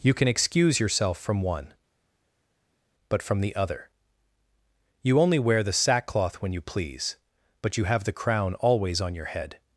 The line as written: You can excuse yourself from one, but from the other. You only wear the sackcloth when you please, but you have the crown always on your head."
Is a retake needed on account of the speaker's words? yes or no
no